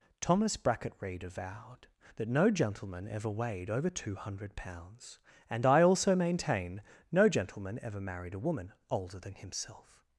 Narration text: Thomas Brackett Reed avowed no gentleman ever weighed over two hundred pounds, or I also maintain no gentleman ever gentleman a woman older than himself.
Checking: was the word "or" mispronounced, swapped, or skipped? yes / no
yes